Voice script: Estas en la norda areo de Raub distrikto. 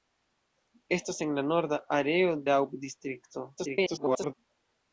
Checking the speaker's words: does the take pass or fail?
fail